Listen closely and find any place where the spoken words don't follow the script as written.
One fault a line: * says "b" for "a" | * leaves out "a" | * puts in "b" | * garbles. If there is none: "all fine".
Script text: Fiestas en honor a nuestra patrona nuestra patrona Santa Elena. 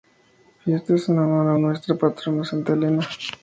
* leaves out "nuestra patrona"